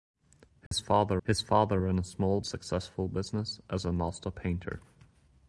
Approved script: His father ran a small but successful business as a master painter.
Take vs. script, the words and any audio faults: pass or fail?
fail